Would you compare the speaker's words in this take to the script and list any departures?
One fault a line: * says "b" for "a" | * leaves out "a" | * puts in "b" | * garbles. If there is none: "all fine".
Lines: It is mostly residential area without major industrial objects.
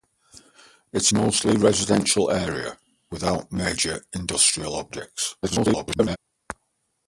* leaves out "is"
* garbles